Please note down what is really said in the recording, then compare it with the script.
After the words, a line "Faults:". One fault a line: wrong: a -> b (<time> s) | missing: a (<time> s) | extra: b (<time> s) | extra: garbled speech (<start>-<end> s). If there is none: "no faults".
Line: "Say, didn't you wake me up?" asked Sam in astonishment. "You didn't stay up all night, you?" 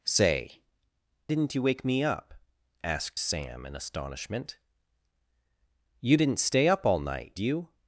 "Say, didn't you wake me up?" asked Sam in astonishment. "You didn't stay up all night, you?"
Faults:
no faults